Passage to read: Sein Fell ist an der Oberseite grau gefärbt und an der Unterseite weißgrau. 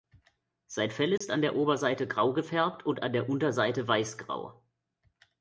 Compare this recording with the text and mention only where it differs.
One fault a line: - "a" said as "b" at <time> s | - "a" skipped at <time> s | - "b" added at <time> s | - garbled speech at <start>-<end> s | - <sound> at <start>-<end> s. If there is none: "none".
- dropout at 1.2-1.2 s